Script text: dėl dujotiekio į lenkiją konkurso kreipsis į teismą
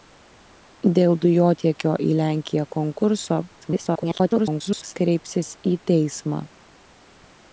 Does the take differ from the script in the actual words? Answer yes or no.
yes